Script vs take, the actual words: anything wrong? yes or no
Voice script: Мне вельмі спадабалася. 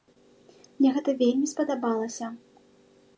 yes